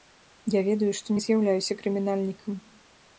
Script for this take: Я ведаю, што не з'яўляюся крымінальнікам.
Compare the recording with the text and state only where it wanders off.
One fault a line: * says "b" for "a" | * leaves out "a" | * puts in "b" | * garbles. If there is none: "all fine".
all fine